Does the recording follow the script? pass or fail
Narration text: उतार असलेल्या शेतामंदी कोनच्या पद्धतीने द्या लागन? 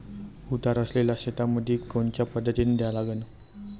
pass